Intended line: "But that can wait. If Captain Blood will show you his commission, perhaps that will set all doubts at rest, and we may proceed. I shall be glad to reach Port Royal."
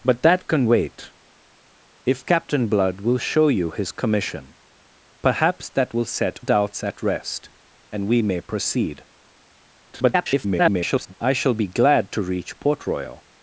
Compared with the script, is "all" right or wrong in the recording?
wrong